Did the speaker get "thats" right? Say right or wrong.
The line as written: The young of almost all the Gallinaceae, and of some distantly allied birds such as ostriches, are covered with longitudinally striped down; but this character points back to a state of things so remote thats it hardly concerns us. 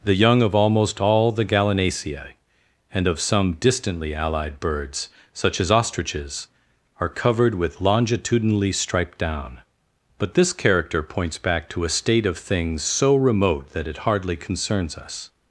wrong